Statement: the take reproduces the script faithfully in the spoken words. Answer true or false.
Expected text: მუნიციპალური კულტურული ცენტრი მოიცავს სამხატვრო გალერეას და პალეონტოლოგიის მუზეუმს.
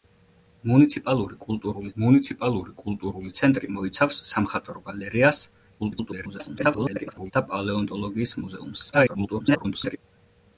false